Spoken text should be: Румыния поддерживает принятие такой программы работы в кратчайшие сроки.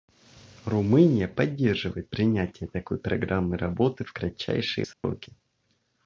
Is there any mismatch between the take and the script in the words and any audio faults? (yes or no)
yes